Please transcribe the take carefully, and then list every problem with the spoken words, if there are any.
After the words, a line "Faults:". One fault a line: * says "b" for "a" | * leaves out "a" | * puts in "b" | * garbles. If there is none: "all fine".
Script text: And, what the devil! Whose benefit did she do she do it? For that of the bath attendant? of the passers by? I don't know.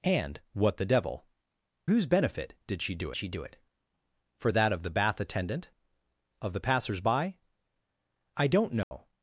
And, what the devil! Whose benefit did she do she do it? For that of the bath attendant? of the passers by? I don't know.
Faults:
all fine